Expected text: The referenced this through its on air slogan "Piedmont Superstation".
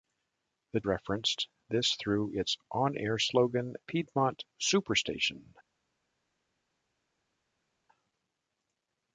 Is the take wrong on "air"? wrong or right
right